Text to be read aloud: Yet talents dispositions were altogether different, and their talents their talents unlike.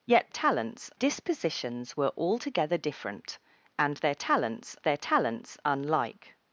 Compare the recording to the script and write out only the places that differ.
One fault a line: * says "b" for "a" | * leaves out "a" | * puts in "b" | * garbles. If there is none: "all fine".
all fine